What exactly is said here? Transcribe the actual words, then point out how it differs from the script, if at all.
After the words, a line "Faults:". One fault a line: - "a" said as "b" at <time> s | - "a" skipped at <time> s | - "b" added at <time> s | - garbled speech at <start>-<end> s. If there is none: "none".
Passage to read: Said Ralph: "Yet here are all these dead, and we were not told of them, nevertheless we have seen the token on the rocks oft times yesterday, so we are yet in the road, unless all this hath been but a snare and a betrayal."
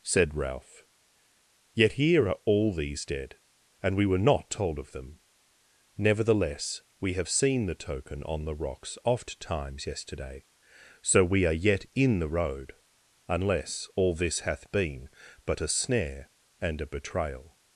Said Ralph: "Yet here are all these dead, and we were not told of them, nevertheless we have seen the token on the rocks oft times yesterday, so we are yet in the road, unless all this hath been but a snare and a betrayal."
Faults:
none